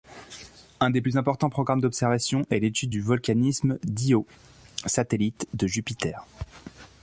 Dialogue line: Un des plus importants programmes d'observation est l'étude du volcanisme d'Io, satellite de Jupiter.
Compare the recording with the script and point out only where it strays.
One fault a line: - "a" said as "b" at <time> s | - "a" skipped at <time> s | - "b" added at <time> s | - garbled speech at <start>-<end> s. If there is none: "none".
none